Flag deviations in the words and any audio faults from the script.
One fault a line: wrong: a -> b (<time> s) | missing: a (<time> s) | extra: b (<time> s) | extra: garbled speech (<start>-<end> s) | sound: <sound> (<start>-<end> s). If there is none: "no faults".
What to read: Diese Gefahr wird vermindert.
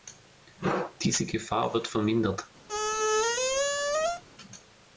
sound: squeak (2.7-4.2 s)